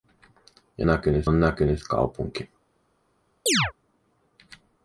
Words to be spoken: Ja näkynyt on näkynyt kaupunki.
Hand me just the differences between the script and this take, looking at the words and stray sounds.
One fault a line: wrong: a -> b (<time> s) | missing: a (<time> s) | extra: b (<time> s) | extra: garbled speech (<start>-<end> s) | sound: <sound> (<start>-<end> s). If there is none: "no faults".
sound: chirp (3.5-3.7 s)